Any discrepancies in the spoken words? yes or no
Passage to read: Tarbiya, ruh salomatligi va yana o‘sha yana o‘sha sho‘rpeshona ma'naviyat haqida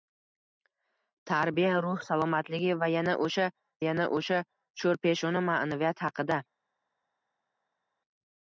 no